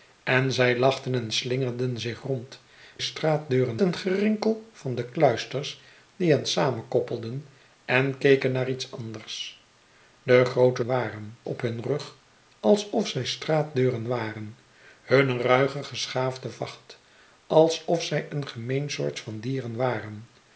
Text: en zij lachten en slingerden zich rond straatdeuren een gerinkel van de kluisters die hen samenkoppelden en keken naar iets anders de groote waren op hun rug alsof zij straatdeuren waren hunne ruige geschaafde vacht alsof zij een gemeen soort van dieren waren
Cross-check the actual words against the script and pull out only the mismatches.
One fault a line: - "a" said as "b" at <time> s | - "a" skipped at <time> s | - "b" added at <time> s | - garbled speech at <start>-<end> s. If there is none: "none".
none